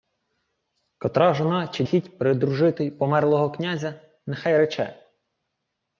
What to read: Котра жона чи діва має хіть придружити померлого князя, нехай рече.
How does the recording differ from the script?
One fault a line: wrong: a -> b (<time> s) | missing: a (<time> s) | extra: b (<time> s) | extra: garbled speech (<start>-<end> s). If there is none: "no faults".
missing: діва має (1.8 s)